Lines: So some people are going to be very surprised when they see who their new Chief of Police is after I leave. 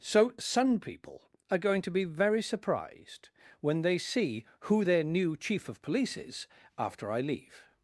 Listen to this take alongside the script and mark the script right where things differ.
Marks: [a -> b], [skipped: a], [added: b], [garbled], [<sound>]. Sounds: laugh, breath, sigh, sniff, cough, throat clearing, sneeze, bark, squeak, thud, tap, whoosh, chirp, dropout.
So [some -> sun] people are going to be very surprised when they see who their new Chief of Police is after I leave.